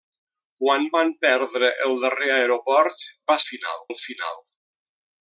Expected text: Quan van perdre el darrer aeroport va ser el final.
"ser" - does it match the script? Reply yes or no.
no